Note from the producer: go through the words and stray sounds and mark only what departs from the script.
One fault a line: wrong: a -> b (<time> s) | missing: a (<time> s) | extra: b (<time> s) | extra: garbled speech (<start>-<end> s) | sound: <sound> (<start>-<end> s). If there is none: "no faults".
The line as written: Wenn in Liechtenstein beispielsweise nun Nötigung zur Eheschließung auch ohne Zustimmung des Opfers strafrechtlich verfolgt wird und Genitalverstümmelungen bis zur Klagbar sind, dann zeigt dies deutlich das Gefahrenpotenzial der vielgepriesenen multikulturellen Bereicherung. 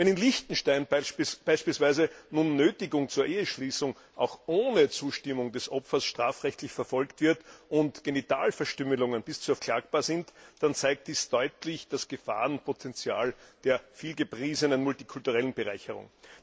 no faults